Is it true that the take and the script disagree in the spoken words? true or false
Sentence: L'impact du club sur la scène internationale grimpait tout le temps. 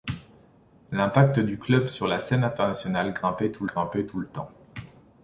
true